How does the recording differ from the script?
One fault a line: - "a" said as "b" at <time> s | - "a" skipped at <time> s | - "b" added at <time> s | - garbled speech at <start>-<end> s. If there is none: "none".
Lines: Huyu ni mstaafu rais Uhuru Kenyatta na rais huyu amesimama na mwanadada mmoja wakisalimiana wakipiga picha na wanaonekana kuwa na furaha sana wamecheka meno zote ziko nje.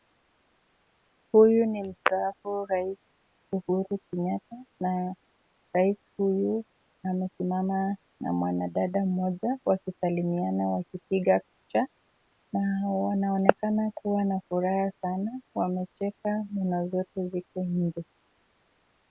none